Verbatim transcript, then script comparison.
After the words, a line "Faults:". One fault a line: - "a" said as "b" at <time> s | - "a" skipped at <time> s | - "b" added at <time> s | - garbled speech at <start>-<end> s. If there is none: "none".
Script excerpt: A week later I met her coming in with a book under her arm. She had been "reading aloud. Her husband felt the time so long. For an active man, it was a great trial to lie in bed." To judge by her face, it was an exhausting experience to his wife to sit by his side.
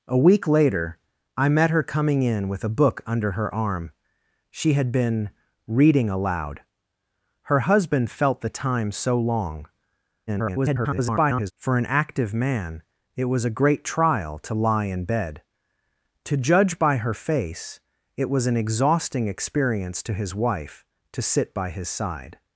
A week later I met her coming in with a book under her arm. She had been "reading aloud. Her husband felt the time so long. [garbled] For an active man, it was a great trial to lie in bed." To judge by her face, it was an exhausting experience to his wife to sit by his side.
Faults:
- garbled speech at 10.3-11.5 s